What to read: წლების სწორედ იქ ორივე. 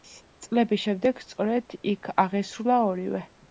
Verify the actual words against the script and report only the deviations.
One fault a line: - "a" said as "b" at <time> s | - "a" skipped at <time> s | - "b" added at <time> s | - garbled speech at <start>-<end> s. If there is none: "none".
- "შემდეგ" added at 0.8 s
- "აღესრულა" added at 2.3 s